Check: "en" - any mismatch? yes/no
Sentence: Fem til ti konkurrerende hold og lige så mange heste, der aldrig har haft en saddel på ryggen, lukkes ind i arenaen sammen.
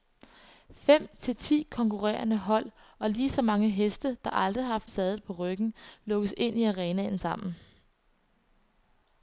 yes